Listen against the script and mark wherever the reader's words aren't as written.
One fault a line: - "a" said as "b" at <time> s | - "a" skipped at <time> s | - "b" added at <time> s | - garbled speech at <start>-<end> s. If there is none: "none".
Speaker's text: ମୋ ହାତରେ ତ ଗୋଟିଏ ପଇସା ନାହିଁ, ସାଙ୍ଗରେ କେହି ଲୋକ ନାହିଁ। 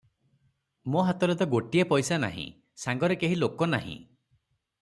none